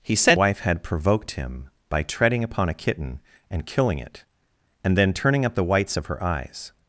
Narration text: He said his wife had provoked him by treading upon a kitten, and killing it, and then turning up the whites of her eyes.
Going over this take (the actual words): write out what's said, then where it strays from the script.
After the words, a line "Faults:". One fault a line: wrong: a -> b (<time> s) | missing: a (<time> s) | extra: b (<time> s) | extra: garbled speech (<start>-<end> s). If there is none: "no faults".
He said wife had provoked him by treading upon a kitten, and killing it, and then turning up the whites of her eyes.
Faults:
missing: his (0.4 s)